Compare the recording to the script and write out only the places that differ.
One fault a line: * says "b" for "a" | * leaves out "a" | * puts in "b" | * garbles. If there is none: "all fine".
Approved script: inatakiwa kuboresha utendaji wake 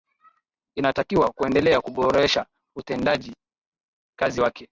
* puts in "kuendelea"
* puts in "kazi"